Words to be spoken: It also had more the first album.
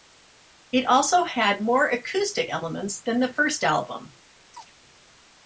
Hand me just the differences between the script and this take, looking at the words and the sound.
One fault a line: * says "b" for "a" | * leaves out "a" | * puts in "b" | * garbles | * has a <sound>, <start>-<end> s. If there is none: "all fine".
* puts in "acoustic elements than"
* has a chirp, 4.5-4.7 s